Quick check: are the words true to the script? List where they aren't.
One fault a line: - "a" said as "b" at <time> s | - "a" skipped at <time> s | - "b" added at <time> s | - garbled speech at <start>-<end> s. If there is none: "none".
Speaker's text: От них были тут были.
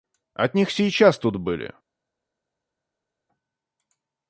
- "были" said as "сейчас" at 0.7 s